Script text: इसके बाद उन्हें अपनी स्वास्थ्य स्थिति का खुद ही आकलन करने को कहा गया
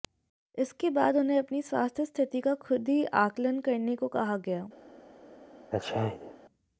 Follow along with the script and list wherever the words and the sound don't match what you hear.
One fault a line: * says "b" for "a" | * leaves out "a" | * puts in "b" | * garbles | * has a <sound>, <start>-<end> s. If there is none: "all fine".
* has a sneeze, 5.7-6.4 s